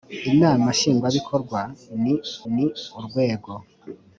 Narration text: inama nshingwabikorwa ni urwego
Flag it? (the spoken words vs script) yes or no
yes